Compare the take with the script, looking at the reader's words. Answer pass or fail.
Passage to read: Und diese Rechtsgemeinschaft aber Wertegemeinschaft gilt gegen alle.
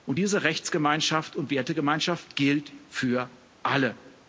fail